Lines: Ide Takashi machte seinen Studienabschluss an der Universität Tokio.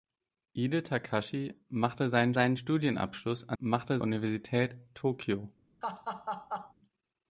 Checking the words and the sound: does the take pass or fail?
fail